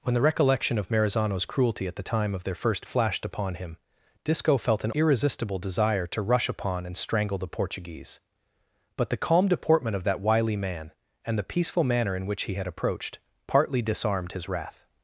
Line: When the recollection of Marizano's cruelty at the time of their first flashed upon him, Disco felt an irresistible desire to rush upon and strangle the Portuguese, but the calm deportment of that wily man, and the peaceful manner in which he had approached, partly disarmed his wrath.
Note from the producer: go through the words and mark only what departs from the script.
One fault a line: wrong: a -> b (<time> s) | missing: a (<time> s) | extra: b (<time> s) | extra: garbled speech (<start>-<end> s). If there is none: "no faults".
no faults